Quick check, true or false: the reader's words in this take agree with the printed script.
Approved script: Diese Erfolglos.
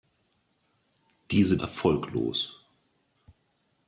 true